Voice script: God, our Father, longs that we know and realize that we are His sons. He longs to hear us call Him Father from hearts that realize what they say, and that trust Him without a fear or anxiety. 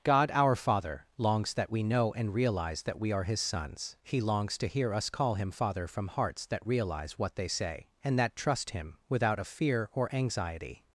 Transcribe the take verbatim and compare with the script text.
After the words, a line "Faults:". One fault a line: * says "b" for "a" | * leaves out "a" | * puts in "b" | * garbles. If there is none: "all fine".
God, our Father, longs that we know and realize that we are His sons. He longs to hear us call Him Father from hearts that realize what they say, and that trust Him without a fear or anxiety.
Faults:
all fine